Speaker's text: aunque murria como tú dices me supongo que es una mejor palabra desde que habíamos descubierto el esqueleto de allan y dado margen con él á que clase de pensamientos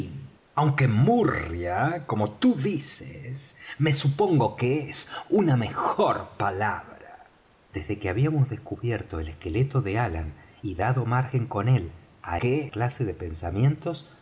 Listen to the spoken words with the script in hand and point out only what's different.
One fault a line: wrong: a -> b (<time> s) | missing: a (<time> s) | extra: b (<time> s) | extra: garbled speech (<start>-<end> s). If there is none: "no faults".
no faults